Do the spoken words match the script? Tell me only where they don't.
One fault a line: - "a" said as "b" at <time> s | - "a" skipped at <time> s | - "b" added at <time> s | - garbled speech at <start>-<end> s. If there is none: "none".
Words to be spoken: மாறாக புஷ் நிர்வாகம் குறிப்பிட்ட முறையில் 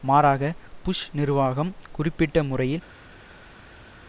none